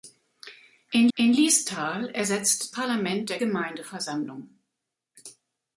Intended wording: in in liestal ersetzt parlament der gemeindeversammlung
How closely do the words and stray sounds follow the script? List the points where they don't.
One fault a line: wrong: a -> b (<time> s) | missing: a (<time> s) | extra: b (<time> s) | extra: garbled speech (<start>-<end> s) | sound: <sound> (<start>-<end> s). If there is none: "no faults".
no faults